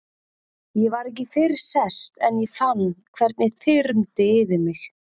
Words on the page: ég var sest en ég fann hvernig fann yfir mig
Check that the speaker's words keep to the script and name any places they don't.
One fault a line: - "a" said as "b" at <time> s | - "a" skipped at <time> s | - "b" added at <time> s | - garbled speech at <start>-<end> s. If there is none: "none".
- "ekki fyrr" added at 1.1 s
- "fann" said as "þyrmdi" at 3.6 s